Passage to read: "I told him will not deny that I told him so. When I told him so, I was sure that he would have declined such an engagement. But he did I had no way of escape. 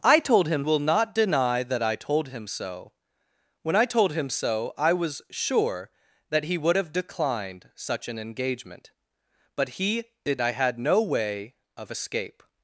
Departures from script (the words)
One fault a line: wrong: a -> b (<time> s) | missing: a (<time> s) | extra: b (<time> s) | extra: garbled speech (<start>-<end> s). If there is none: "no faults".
no faults